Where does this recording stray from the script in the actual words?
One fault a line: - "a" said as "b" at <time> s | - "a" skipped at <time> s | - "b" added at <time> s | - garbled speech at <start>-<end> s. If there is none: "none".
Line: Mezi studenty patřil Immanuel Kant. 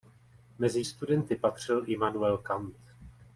none